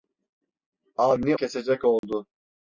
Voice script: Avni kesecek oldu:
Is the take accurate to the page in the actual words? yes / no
yes